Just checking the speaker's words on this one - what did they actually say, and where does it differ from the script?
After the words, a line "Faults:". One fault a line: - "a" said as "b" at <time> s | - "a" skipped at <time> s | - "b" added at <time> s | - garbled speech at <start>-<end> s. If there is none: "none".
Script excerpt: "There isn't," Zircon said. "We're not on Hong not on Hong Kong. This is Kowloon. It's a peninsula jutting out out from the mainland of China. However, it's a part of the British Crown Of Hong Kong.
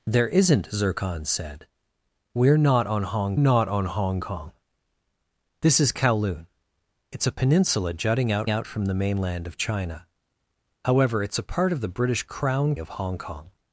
"There isn't," Zircon said. "We're not on Hong not on Hong Kong. This is Kowloon. It's a peninsula jutting out out from the mainland of China. However, it's a part of the British Crown Of Hong Kong.
Faults:
none